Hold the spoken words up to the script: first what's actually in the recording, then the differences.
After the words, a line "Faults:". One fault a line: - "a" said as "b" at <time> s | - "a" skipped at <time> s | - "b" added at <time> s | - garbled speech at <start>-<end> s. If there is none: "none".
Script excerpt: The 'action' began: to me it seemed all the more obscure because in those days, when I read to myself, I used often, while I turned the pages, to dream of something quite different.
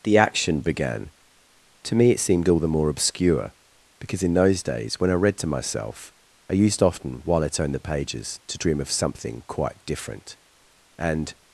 The 'action' began: to me it seemed all the more obscure because in those days, when I read to myself, I used often, while I turned the pages, to dream of something quite different. And
Faults:
- "And" added at 11.0 s